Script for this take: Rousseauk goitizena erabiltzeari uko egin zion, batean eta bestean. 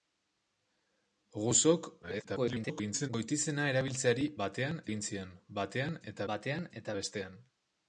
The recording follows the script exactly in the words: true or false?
false